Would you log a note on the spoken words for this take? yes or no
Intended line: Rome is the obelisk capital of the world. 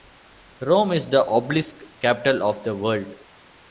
no